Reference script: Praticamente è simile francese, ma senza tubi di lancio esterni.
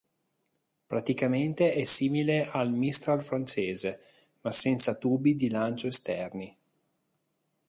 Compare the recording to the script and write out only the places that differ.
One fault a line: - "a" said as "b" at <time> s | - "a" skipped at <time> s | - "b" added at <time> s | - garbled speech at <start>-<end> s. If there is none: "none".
- "al Mistral" added at 2.5 s